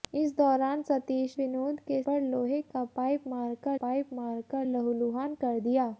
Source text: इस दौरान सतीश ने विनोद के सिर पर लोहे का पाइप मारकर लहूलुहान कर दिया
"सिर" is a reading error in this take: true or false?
true